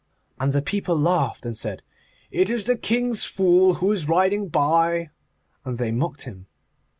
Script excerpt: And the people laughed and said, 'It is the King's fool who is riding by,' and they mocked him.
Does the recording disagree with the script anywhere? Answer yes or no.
no